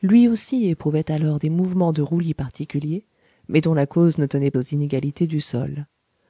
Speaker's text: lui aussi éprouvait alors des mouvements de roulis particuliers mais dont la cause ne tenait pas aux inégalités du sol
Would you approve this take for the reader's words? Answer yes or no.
no